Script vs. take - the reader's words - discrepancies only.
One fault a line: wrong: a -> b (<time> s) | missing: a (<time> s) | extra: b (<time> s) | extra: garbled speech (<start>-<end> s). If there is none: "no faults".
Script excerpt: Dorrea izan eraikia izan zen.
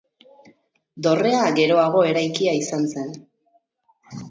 wrong: izan -> geroago (1.6 s)